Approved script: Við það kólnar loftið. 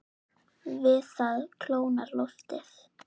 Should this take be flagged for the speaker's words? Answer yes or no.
no